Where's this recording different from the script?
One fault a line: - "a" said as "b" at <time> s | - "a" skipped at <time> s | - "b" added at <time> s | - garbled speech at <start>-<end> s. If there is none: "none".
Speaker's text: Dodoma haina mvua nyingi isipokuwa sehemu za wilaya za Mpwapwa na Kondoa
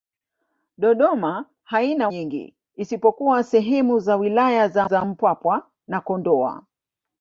- "mvua" skipped at 2.1 s
- "za" added at 4.8 s